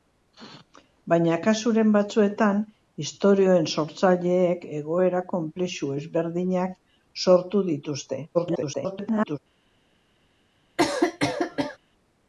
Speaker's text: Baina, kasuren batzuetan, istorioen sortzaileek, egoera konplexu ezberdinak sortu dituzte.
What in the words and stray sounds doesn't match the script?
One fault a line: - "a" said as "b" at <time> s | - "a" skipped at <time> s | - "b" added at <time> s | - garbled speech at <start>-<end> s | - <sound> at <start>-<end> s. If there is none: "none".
- garbled speech at 8.3-9.4 s
- cough at 10.8-11.8 s